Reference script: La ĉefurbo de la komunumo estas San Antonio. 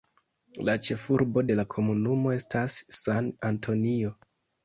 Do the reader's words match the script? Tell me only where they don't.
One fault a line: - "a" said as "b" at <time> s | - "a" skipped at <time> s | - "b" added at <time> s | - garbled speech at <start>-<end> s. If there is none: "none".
none